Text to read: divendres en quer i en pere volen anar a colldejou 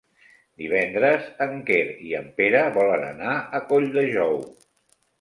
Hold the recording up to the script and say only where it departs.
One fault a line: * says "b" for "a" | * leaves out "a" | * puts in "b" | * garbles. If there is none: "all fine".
all fine